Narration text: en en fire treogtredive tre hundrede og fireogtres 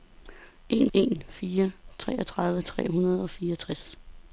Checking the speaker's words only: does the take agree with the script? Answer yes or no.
yes